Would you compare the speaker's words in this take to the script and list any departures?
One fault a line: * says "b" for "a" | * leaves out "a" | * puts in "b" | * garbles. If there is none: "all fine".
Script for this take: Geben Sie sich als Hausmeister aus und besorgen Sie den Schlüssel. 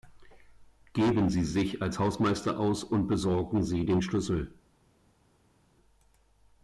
all fine